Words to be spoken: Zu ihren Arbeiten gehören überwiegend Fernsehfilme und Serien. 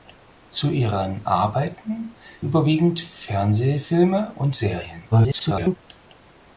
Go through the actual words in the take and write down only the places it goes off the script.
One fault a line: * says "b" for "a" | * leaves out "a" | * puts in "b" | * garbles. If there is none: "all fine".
* leaves out "gehören"
* garbles